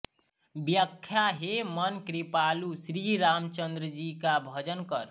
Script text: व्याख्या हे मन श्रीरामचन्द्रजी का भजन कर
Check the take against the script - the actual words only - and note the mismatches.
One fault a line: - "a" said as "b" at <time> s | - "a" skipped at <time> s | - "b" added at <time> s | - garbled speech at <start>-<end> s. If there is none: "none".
- "कृपालु" added at 2.1 s